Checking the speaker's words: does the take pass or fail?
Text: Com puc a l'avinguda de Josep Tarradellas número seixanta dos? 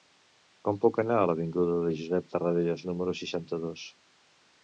fail